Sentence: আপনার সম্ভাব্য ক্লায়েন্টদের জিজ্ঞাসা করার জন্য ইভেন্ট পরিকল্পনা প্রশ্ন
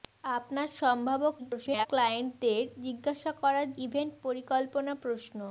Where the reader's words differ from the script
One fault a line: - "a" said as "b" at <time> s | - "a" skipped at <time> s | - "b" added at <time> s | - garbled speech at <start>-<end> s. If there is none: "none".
- garbled speech at 1.4-1.9 s
- "জন্য" skipped at 3.7 s